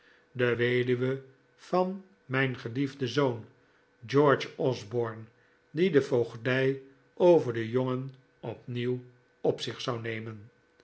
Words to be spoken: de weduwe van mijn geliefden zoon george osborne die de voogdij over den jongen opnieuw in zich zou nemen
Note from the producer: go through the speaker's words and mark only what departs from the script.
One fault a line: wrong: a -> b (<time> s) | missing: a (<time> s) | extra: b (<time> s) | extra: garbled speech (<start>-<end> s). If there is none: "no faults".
wrong: in -> op (9.4 s)